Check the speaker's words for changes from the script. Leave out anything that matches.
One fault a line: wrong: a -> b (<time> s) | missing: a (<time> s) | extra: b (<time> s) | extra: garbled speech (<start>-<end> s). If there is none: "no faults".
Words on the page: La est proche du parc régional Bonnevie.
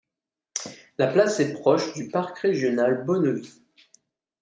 extra: place (1.1 s)